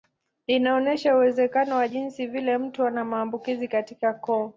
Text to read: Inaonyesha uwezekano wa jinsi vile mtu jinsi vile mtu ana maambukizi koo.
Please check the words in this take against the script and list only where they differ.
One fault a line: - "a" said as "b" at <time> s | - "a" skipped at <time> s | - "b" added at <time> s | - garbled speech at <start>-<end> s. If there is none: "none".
- "jinsi vile mtu" skipped at 2.8 s
- "katika" added at 3.7 s